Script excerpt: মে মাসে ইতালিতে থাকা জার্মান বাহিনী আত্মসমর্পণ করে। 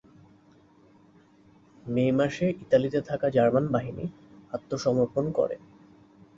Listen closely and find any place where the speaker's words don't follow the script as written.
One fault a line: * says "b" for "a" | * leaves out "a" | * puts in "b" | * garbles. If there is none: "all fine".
all fine